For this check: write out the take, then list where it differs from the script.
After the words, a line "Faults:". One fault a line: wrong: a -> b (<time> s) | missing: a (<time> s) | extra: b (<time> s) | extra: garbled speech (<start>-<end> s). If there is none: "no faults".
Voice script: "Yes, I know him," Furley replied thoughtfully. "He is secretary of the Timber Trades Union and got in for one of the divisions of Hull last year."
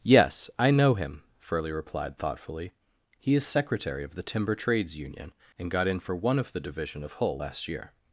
"Yes, I know him," Furley replied thoughtfully. "He is secretary of the Timber Trades Union and got in for one of the division of Hull last year."
Faults:
wrong: divisions -> division (6.6 s)